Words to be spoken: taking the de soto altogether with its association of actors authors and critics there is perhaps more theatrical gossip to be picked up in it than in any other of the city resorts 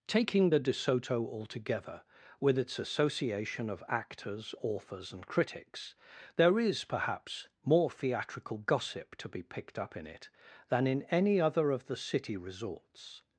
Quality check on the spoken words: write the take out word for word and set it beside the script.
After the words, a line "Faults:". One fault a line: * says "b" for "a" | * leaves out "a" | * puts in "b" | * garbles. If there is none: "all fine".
taking the de soto altogether with its association of actors authors and critics there is perhaps more theatrical gossip to be picked up in it than in any other of the city resorts
Faults:
all fine